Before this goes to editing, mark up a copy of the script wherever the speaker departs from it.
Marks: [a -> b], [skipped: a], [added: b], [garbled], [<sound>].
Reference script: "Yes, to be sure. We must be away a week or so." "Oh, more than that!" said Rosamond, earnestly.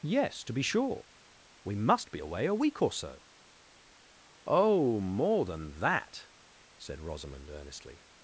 "Yes, to be sure. We must be away a week or so." "Oh, more than that!" said Rosamond, earnestly.